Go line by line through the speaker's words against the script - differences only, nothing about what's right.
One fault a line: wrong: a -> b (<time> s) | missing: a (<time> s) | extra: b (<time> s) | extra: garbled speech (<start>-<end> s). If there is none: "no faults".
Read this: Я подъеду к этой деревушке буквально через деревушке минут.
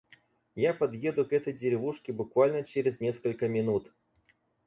wrong: деревушке -> несколько (3.0 s)